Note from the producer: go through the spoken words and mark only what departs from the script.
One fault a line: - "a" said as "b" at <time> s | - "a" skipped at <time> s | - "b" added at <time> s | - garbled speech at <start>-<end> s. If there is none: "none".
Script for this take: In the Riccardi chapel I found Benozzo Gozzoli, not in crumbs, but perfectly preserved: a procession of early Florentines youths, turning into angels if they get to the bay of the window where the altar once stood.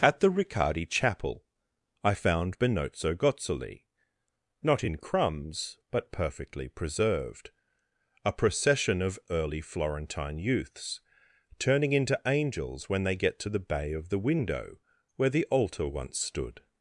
- "In" said as "At" at 0.0 s
- "Florentines" said as "Florentine" at 9.6 s
- "if" said as "when" at 12.9 s